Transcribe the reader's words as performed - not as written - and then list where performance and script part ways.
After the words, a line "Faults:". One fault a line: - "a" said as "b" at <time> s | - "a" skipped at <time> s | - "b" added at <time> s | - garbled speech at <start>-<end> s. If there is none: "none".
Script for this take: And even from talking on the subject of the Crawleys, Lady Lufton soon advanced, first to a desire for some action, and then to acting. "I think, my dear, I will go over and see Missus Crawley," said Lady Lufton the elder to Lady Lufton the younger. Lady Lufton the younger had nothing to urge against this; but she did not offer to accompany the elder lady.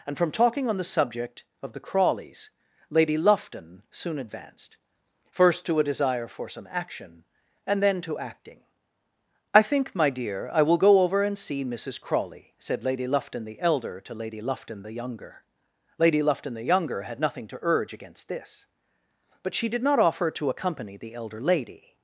And from talking on the subject of the Crawleys, Lady Lufton soon advanced, first to a desire for some action, and then to acting. "I think, my dear, I will go over and see Missus Crawley," said Lady Lufton the elder to Lady Lufton the younger. Lady Lufton the younger had nothing to urge against this; but she did not offer to accompany the elder lady.
Faults:
- "even" skipped at 0.2 s